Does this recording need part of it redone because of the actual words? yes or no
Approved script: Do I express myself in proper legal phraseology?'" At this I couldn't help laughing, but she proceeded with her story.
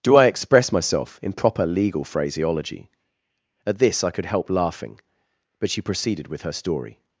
yes